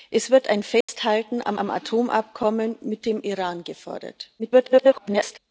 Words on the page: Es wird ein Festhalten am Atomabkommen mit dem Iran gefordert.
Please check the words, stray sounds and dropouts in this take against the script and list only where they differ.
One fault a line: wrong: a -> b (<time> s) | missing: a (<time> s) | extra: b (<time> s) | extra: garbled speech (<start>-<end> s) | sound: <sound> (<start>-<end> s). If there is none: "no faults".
sound: dropout (0.8-0.9 s)
extra: am (1.6 s)
extra: garbled speech (4.4-5.4 s)